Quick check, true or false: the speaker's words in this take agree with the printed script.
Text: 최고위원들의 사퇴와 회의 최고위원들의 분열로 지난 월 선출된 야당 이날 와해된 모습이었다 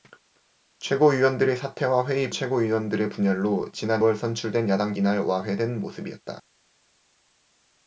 true